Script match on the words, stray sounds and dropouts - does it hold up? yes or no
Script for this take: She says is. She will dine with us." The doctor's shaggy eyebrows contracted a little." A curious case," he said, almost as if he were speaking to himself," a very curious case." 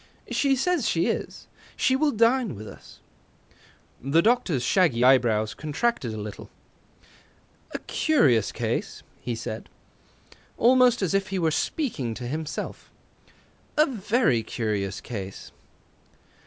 no